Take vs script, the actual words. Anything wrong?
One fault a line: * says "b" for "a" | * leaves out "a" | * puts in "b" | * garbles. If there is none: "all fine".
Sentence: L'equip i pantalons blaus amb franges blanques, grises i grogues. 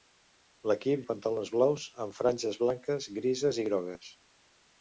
all fine